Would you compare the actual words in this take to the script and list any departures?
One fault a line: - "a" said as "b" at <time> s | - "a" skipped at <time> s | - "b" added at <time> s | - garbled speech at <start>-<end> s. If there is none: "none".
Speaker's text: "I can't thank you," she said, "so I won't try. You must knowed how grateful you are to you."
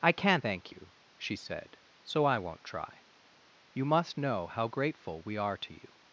- "knowed" said as "know" at 4.2 s
- "you" said as "we" at 5.2 s